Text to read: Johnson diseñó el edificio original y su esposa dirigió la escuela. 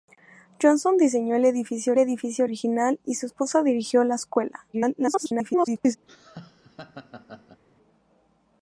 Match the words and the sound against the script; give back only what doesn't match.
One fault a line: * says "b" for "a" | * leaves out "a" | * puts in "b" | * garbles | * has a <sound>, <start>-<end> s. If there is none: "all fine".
* puts in "edificio"
* garbles
* has a laugh, 6.1-7.6 s